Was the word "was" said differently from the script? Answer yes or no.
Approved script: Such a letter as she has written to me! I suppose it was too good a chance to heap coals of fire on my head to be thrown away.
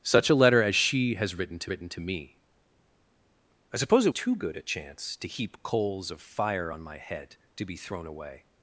yes